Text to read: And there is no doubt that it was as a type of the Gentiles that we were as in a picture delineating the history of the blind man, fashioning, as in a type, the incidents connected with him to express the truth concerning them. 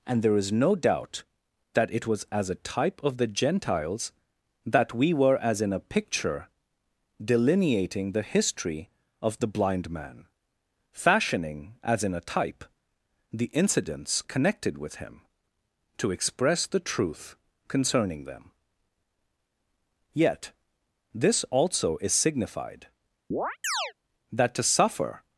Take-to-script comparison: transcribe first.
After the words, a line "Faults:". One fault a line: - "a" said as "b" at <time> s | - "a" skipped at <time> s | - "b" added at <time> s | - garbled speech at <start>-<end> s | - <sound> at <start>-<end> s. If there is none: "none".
And there is no doubt that it was as a type of the Gentiles that we were as in a picture delineating the history of the blind man, fashioning, as in a type, the incidents connected with him to express the truth concerning them. Yet this also is signified, that to suffer
Faults:
- "Yet this also is signified that to suffer" added at 20.1 s
- chirp at 23.3-23.9 s